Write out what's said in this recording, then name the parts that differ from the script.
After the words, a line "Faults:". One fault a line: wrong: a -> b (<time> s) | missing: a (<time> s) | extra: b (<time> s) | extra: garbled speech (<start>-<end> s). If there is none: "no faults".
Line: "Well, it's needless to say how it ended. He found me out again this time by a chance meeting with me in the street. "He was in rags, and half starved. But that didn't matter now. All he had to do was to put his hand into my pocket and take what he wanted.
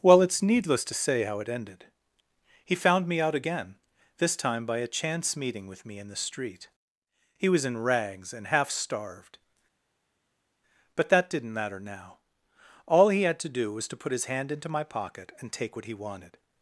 "Well, it's needless to say how it ended. He found me out again this time by a chance meeting with me in the street. "He was in rags, and half starved. But that didn't matter now. All he had to do was to put his hand into my pocket and take what he wanted.
Faults:
no faults